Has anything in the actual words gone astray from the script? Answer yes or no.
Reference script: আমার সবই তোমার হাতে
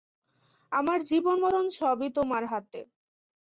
yes